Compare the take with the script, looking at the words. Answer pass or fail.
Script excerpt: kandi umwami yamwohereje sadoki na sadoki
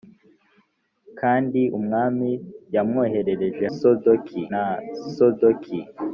pass